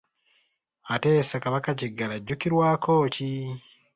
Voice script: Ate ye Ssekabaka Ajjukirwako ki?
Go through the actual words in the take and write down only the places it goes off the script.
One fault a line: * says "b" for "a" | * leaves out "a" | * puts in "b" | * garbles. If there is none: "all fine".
* puts in "Kiggala"